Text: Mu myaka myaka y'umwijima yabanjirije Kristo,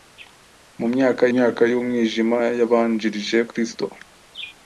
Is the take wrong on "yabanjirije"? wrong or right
right